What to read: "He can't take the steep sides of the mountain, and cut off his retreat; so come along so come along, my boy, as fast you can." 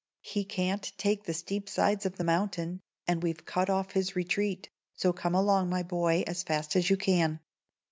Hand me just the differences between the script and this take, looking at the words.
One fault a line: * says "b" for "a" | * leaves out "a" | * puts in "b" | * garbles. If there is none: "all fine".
* puts in "we've"
* leaves out "so come along"
* puts in "as"